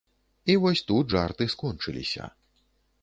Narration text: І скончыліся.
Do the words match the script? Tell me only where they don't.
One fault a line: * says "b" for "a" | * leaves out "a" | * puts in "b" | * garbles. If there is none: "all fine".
* puts in "вось тут жарты"